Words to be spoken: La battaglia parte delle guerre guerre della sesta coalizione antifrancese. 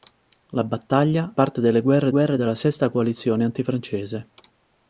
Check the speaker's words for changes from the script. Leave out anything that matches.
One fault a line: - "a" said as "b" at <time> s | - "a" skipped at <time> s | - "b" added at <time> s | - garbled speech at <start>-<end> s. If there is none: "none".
none